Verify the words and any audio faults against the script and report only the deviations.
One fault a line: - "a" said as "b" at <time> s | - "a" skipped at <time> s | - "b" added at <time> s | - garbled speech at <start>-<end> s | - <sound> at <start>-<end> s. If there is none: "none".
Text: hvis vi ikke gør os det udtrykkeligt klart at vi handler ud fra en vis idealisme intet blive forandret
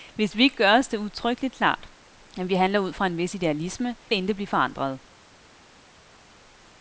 none